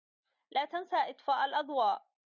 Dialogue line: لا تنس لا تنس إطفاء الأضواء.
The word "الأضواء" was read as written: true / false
true